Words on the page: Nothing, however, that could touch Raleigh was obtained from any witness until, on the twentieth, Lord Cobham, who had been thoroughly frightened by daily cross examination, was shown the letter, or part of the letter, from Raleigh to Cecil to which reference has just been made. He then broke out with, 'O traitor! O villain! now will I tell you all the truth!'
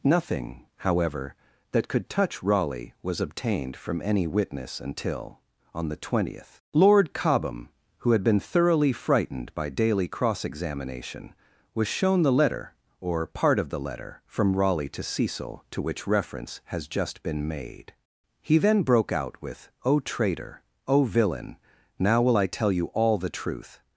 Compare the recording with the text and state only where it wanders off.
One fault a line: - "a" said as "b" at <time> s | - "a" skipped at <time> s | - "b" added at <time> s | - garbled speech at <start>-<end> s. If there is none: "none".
none